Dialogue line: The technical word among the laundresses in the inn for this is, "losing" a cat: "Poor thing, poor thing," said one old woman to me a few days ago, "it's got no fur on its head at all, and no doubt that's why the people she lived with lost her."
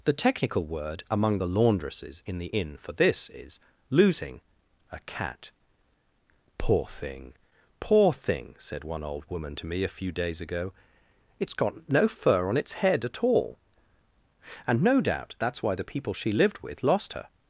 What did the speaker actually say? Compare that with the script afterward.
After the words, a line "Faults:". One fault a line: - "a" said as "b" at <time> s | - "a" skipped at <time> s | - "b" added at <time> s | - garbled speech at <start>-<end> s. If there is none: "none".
The technical word among the laundresses in the inn for this is, "losing" a cat: "Poor thing, poor thing," said one old woman to me a few days ago, "it's got no fur on its head at all, and no doubt that's why the people she lived with lost her."
Faults:
none